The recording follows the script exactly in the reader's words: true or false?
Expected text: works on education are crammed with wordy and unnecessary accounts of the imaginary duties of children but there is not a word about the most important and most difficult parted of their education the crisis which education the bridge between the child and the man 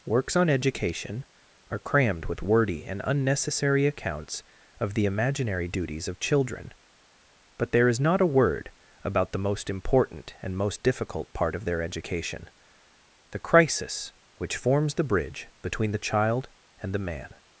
false